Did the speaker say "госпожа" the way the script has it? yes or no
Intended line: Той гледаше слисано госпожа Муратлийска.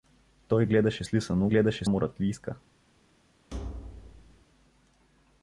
no